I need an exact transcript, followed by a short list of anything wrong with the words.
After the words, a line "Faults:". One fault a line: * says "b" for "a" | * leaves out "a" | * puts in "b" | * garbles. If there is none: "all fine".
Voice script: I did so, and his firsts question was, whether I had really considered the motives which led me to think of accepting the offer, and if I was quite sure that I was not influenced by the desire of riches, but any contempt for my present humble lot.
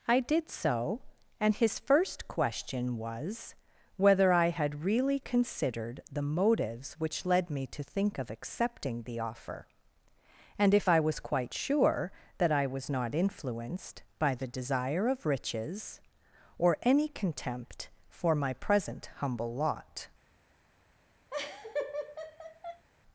I did so, and his first question was, whether I had really considered the motives which led me to think of accepting the offer, and if I was quite sure that I was not influenced by the desire of riches, or any contempt for my present humble lot.
Faults:
* says "first" for "firsts"
* says "or" for "but"